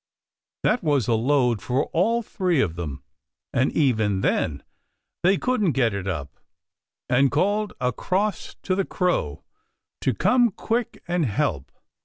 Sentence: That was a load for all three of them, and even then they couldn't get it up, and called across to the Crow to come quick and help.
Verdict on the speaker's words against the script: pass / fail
pass